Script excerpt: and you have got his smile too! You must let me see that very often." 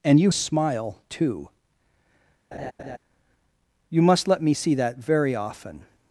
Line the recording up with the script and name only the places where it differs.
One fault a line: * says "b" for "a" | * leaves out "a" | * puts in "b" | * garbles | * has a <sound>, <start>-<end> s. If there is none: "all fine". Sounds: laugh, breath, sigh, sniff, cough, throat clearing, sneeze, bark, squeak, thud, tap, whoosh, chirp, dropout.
* leaves out "have got his"
* has a laugh, 2.5-3.0 s